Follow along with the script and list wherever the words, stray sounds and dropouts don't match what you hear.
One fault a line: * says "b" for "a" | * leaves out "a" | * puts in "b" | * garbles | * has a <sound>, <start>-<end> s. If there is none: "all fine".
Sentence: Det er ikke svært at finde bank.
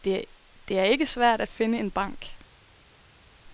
* puts in "en"